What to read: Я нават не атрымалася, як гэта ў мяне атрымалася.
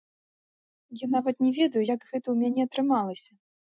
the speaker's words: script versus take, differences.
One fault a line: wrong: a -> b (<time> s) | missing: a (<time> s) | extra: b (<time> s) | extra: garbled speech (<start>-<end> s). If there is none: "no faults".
wrong: атрымалася -> ведаю (1.6 s)